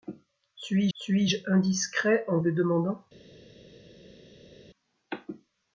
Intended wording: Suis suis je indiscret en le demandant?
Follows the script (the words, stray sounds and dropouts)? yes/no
yes